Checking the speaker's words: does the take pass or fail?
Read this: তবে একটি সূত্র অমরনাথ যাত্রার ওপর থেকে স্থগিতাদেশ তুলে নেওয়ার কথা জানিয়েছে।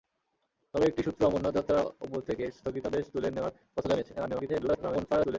fail